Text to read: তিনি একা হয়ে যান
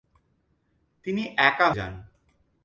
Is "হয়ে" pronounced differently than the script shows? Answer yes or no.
yes